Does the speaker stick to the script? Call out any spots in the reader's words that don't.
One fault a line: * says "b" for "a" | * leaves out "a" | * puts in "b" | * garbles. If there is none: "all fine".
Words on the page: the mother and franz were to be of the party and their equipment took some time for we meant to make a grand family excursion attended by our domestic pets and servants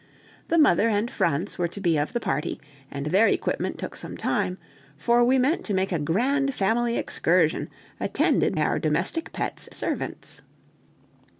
* leaves out "by"
* leaves out "and"